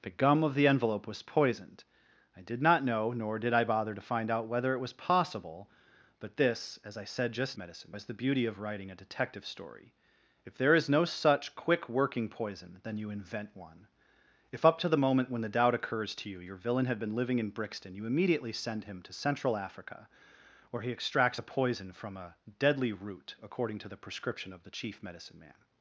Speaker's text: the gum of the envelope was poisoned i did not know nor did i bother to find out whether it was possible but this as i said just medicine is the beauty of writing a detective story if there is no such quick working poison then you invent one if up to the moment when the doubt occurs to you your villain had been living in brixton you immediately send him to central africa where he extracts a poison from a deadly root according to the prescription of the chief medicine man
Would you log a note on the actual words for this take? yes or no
no